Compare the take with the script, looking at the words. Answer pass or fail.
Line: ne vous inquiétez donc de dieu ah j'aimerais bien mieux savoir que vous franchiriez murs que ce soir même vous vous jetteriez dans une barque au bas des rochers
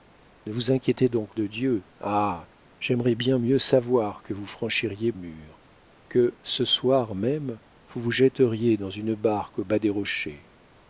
pass